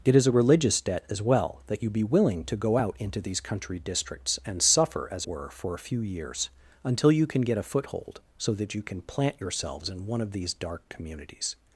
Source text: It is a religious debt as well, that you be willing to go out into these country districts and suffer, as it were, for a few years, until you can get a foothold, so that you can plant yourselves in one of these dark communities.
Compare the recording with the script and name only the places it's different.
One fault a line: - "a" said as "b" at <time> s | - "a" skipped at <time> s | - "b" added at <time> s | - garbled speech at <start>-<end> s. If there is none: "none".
- "it" skipped at 5.2 s